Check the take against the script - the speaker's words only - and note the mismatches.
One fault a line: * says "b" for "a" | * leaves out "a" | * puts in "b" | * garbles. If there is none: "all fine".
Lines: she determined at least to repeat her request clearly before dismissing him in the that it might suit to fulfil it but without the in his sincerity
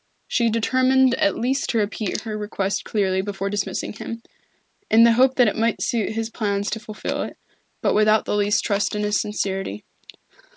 * puts in "hope"
* puts in "his plans"
* puts in "least trust"